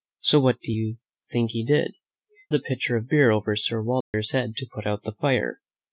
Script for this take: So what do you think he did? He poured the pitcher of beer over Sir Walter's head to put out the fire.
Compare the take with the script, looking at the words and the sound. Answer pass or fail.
fail